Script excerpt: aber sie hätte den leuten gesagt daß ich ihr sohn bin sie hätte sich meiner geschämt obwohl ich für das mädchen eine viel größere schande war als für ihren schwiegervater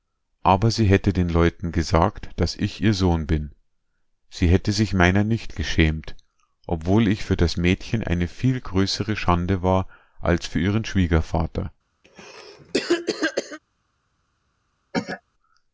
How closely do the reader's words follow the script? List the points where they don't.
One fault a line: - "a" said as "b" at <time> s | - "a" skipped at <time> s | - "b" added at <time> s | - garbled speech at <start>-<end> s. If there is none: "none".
- "nicht" added at 5.2 s